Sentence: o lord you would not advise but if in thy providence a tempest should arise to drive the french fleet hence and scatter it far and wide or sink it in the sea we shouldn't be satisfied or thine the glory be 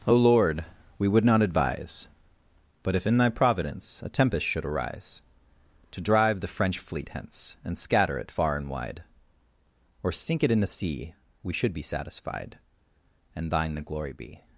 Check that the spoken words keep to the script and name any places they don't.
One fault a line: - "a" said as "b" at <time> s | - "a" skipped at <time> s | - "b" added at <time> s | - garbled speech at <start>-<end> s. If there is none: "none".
- "you" said as "we" at 1.0 s
- "shouldn't" said as "should" at 11.5 s
- "or" said as "and" at 13.3 s